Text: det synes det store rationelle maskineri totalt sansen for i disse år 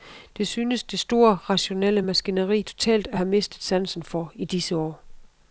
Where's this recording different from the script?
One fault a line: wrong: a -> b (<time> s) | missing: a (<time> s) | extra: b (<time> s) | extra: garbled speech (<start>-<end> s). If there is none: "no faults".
extra: at have mistet (3.1 s)